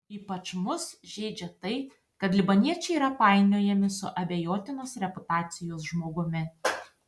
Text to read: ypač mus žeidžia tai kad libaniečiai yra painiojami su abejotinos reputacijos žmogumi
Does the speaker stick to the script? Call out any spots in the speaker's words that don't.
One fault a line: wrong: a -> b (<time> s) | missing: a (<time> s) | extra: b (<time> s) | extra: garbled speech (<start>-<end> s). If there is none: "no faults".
no faults